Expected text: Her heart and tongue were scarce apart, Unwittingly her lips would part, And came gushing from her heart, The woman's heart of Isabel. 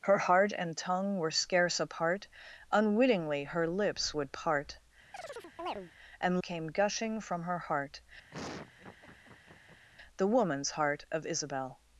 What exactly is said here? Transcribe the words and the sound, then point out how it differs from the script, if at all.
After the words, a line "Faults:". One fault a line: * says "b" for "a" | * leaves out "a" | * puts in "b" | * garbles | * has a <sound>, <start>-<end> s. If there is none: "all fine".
Her heart and tongue were scarce apart, Unwittingly her lips would part, And came gushing from her heart, The woman's heart of Isabel.
Faults:
* has a chirp, 5.1-5.9 s
* has a laugh, 8.3-9.9 s